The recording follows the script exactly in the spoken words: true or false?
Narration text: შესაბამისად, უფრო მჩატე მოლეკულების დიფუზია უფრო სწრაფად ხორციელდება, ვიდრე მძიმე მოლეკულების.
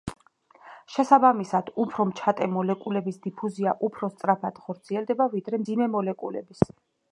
true